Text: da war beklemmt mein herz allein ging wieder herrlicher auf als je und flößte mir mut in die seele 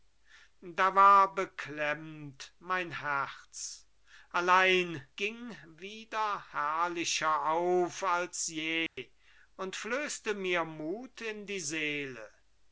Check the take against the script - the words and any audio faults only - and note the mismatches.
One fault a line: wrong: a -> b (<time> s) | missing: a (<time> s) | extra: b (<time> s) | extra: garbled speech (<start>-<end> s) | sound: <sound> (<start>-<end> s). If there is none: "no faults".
sound: dropout (8.9-9.0 s)